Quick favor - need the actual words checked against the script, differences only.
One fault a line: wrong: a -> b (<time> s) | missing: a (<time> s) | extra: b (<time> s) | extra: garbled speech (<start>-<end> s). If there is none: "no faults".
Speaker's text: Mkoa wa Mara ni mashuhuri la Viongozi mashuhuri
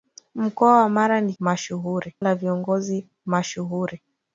no faults